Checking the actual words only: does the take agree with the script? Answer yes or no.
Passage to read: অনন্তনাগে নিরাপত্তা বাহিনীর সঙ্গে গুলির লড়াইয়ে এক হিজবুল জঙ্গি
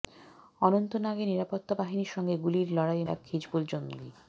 yes